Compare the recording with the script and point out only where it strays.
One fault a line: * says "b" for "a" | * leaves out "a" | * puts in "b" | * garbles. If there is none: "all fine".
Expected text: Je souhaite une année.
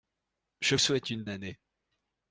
all fine